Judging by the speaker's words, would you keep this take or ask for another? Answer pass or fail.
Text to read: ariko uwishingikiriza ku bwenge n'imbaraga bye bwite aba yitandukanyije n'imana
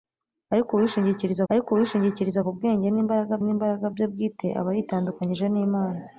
fail